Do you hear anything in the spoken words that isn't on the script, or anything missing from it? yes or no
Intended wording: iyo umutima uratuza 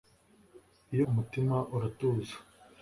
no